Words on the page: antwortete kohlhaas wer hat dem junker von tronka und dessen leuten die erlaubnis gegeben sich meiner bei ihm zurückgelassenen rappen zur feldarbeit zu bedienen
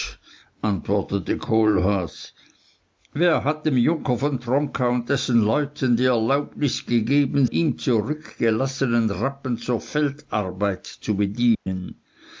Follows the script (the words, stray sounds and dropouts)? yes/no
no